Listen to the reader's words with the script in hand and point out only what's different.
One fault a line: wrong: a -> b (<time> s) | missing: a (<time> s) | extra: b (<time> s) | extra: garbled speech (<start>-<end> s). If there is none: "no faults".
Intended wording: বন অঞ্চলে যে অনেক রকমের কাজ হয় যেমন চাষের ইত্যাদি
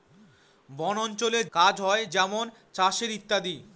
missing: যে অনেক রকমের (1.4 s)